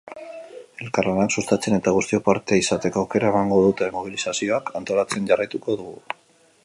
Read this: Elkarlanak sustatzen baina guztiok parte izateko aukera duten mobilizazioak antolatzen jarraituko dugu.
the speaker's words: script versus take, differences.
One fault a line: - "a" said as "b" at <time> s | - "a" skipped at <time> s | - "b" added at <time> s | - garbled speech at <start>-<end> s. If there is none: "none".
- "baina" said as "eta" at 1.8 s
- "emango" added at 3.3 s